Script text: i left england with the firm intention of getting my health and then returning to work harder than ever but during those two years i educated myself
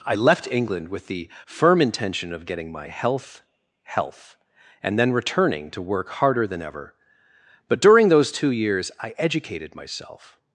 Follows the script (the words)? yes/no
no